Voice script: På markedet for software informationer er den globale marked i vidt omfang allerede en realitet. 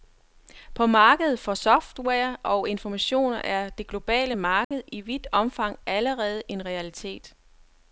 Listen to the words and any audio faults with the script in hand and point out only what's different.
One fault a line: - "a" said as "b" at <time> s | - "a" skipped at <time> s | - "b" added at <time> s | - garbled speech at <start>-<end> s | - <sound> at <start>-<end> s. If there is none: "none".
- "og" added at 2.4 s
- "den" said as "det" at 3.7 s
- dropout at 4.6-4.7 s